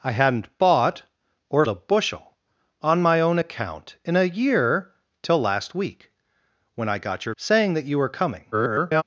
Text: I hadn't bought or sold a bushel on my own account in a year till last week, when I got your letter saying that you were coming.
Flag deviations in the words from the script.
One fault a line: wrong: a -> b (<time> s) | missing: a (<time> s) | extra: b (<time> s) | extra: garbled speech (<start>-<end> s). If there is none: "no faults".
missing: sold (1.6 s)
missing: letter (7.3 s)
extra: garbled speech (8.5-9.0 s)